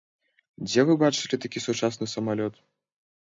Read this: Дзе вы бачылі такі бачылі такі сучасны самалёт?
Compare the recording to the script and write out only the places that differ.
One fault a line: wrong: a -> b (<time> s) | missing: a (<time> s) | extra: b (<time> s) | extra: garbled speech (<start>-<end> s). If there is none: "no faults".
missing: бачылі такі (1.6 s)